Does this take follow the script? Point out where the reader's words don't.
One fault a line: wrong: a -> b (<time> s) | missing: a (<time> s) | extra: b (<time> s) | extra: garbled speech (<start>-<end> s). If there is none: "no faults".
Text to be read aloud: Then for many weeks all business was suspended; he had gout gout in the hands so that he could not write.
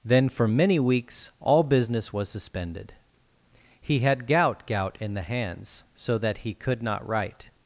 no faults